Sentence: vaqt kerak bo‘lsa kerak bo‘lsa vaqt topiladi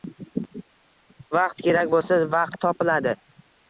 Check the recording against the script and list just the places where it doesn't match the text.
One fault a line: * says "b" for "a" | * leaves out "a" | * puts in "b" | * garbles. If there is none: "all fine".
* leaves out "kerak bo‘lsa"